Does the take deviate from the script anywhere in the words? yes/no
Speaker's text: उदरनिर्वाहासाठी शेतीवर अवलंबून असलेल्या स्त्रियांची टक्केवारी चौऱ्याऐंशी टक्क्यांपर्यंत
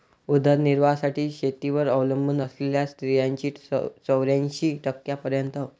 yes